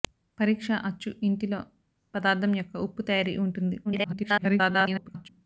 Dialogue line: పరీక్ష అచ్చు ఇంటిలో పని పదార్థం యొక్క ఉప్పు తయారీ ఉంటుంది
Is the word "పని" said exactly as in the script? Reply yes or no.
no